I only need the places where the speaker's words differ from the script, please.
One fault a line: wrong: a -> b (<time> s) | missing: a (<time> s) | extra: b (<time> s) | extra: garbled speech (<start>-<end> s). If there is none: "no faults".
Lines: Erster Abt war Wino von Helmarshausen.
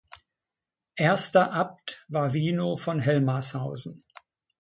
no faults